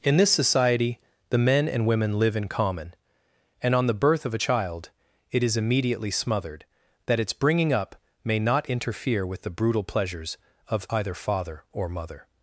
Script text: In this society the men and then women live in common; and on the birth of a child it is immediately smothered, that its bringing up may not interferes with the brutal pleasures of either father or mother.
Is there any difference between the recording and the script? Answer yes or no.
yes